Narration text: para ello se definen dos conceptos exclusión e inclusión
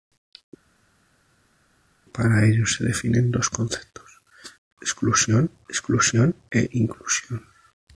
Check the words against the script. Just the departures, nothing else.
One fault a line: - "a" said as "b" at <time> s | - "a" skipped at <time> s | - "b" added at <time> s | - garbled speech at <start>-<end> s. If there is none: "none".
- "exclusión" added at 5.7 s